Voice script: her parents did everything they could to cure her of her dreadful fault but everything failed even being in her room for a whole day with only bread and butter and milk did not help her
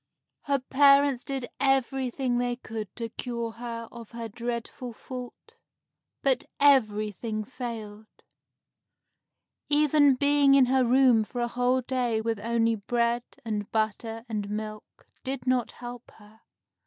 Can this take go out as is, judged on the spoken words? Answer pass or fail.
pass